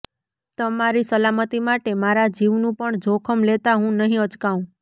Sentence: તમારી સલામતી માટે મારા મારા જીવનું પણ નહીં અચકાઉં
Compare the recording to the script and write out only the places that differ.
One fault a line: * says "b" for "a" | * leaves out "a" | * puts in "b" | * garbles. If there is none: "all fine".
* leaves out "મારા"
* puts in "જોખમ લેતા હું"